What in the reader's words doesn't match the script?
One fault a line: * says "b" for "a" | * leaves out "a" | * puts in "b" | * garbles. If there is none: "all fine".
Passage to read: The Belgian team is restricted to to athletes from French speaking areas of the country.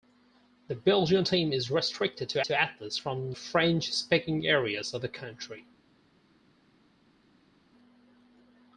all fine